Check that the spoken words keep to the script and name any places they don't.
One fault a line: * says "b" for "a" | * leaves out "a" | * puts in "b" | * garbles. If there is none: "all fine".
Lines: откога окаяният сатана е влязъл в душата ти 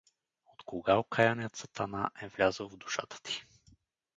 all fine